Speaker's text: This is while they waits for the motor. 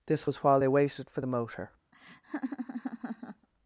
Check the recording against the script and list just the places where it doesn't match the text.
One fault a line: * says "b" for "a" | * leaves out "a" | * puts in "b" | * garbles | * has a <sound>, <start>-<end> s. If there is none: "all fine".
* says "was" for "is"
* says "waited" for "waits"
* has a laugh, 1.9-3.5 s